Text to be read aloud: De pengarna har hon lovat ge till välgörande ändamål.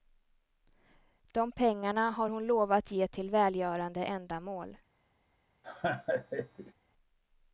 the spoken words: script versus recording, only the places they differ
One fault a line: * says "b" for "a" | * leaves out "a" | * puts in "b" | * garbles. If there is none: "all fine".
all fine